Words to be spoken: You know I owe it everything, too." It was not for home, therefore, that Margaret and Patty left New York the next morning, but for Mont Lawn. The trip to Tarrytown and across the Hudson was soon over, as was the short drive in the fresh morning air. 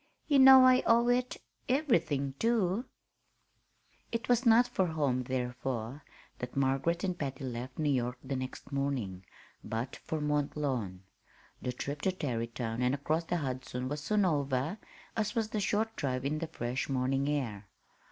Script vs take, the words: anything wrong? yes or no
no